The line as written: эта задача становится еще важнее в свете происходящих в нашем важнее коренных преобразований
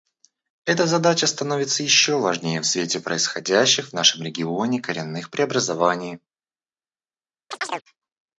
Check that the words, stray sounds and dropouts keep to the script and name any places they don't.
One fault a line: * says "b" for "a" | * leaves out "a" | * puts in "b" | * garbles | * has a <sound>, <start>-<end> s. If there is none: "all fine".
* says "регионе" for "важнее"
* has a chirp, 7.5-7.8 s